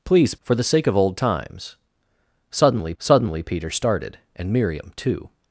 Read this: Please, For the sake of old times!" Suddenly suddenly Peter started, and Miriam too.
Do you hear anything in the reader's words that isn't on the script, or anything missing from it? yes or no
no